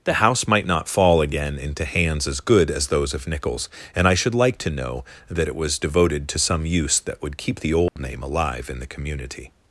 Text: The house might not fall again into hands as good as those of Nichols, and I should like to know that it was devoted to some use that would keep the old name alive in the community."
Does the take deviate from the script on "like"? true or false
false